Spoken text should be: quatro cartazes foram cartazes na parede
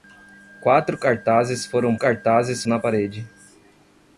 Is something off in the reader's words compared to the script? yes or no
no